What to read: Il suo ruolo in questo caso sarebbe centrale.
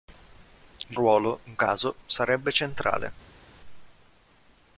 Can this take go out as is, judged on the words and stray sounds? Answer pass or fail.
fail